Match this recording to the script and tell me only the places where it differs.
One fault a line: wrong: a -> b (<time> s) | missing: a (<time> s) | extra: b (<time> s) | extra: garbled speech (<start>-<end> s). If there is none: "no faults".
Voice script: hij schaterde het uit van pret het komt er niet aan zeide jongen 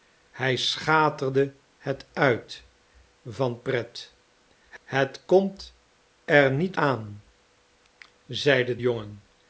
no faults